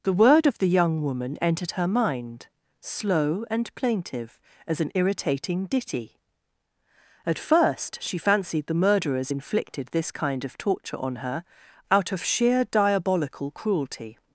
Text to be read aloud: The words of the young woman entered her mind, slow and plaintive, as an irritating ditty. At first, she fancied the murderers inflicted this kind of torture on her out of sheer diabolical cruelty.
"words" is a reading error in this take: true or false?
true